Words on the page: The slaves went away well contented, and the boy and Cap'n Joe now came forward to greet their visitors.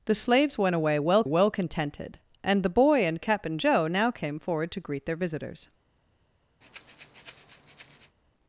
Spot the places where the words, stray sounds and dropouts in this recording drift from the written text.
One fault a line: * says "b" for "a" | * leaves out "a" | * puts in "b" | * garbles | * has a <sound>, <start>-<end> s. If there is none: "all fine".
* puts in "well"
* has a breath, 6.6-8.2 s